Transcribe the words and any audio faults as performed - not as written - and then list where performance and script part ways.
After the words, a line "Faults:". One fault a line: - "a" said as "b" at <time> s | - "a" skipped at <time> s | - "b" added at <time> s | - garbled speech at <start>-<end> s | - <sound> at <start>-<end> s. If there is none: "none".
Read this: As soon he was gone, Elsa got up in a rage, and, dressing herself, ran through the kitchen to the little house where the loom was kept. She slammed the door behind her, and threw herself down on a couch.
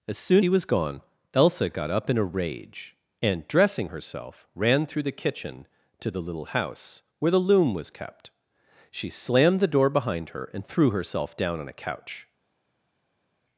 As soon he was gone, Elsa got up in a rage, and, dressing herself, ran through the kitchen to the little house where the loom was kept. She slammed the door behind her, and threw herself down on a couch.
Faults:
none